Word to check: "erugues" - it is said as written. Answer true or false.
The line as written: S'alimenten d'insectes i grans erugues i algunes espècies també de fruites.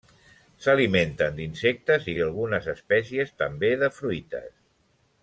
false